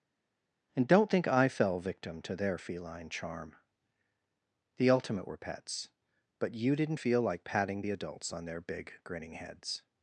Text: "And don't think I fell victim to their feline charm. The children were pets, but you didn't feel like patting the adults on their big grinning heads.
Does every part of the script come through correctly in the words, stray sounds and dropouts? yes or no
no